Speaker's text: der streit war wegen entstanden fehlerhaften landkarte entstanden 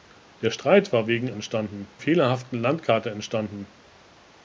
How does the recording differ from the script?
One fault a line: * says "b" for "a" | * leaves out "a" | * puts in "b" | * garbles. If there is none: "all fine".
all fine